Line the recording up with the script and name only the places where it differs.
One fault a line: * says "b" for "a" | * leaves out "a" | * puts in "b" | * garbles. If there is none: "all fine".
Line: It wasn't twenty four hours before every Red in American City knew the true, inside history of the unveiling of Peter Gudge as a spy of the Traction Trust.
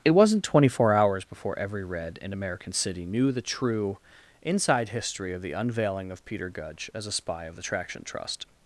all fine